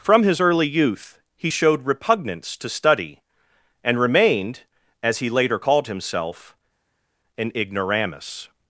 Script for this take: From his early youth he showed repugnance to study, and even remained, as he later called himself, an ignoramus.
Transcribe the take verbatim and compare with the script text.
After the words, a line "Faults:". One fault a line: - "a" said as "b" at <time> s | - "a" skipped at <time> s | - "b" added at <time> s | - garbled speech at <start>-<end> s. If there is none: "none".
From his early youth he showed repugnance to study, and remained, as he later called himself, an ignoramus.
Faults:
- "even" skipped at 4.0 s